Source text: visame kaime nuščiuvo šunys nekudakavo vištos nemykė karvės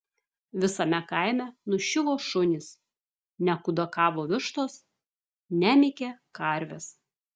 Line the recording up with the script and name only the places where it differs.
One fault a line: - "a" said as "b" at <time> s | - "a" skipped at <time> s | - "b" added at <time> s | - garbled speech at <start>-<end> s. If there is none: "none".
none